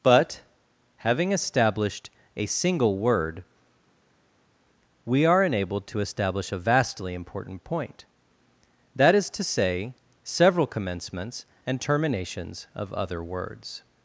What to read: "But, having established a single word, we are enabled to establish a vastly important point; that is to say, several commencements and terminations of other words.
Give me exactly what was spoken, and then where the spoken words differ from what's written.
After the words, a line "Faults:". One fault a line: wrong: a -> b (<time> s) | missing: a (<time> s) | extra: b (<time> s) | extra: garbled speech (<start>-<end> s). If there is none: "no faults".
"But, having established a single word, we are enabled to establish a vastly important point; that is to say, several commencements and terminations of other words.
Faults:
no faults